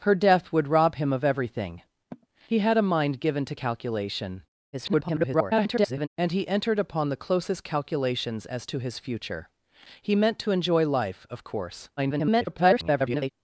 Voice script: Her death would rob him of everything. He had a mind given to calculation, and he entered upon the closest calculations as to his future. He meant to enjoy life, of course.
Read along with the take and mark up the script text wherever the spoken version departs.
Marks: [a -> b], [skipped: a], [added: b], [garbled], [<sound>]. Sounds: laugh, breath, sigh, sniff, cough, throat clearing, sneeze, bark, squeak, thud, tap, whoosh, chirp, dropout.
Her death would rob him of everything. [sigh] He had a mind given to calculation, [garbled] and he entered upon the closest calculations as to his future. He meant to enjoy life, of course. [garbled]